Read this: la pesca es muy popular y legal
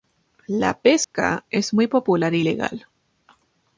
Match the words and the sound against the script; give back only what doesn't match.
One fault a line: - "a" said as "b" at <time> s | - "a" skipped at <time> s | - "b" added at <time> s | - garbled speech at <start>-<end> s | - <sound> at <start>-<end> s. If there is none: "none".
- dropout at 1.0-1.1 s